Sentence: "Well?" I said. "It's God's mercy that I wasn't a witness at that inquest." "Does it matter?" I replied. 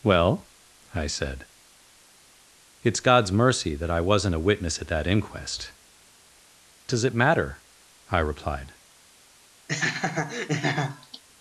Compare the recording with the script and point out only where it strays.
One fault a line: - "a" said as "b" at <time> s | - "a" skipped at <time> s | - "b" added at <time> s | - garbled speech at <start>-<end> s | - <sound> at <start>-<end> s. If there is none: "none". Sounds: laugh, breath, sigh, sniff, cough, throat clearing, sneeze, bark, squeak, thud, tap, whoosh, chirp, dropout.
- laugh at 9.7-11.2 s